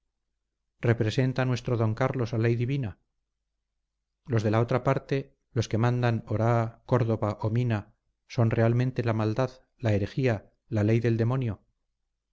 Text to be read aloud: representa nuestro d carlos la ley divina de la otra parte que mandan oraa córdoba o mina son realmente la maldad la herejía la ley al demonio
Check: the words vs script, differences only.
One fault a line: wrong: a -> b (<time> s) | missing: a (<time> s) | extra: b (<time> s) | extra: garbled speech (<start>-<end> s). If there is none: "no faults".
extra: los (4.3 s)
extra: los (5.5 s)
wrong: al -> del (11.0 s)